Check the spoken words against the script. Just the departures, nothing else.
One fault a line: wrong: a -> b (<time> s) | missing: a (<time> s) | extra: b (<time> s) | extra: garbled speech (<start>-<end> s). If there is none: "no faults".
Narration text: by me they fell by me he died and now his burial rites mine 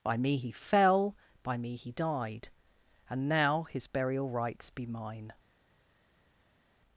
wrong: they -> he (0.4 s)
extra: be (4.7 s)